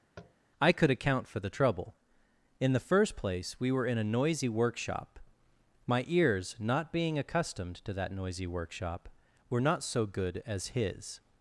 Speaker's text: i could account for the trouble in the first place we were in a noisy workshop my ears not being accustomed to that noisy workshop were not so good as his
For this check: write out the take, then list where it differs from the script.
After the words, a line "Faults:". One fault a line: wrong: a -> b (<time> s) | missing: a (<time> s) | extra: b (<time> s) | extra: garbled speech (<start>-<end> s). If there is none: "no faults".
i could account for the trouble in the first place we were in a noisy workshop my ears not being accustomed to that noisy workshop were not so good as his
Faults:
no faults